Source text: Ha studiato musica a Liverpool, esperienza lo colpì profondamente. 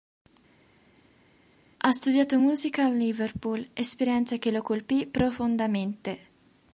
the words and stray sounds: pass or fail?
fail